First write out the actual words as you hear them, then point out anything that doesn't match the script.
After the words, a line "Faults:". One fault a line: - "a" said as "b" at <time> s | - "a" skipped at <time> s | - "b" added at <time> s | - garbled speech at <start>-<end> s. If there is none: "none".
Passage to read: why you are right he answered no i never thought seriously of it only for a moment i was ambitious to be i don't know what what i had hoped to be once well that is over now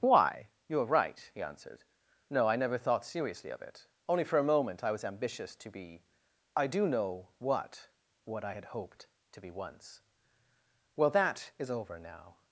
why you are right he answered no i never thought seriously of it only for a moment i was ambitious to be i do know what what i had hoped to be once well that is over now
Faults:
- "don't" said as "do" at 6.7 s